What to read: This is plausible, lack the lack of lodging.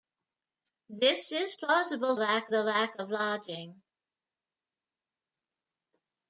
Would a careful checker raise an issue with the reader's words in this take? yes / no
no